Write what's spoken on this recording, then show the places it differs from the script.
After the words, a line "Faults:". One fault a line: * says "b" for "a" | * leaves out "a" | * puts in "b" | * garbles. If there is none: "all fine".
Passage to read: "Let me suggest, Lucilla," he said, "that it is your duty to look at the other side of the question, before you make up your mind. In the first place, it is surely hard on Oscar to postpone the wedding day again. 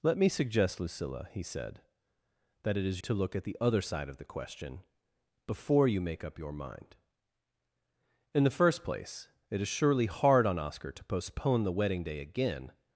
"Let me suggest, Lucilla," he said, "that it is to look at the other side of the question, before you make up your mind. In the first place, it is surely hard on Oscar to postpone the wedding day again.
Faults:
* leaves out "your duty"